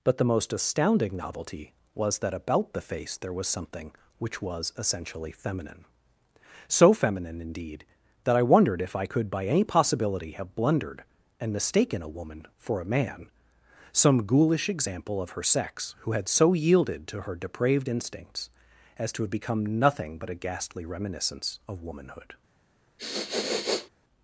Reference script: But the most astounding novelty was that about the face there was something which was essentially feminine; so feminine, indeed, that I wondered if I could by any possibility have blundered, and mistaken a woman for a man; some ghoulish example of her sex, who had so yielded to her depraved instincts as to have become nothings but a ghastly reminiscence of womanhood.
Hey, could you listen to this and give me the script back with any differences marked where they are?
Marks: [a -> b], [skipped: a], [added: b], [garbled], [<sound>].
But the most astounding novelty was that about the face there was something which was essentially feminine; so feminine, indeed, that I wondered if I could by any possibility have blundered, and mistaken a woman for a man; some ghoulish example of her sex, who had so yielded to her depraved instincts as to have become [nothings -> nothing] but a ghastly reminiscence of womanhood. [sniff]